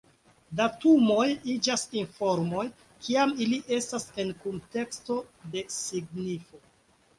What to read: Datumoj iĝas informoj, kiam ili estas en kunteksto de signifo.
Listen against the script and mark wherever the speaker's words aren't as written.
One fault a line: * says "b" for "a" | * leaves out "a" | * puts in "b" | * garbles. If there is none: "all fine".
all fine